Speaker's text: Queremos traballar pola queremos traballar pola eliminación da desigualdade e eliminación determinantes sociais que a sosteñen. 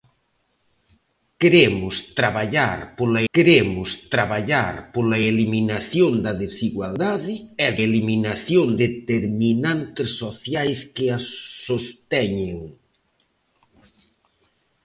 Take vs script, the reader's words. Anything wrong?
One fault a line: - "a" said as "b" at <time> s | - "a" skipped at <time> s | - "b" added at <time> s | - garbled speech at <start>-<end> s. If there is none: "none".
none